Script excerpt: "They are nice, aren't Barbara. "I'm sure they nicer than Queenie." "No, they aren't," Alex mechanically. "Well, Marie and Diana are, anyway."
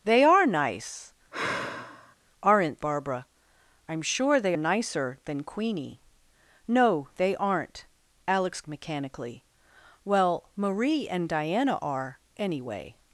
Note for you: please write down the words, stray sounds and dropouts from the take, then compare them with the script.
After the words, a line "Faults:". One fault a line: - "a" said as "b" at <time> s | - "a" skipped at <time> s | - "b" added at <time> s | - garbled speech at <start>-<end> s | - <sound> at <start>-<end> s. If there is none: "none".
"They are nice, aren't Barbara. "I'm sure they nicer than Queenie." "No, they aren't," Alex mechanically. "Well, Marie and Diana are, anyway."
Faults:
- sigh at 1.3-2.2 s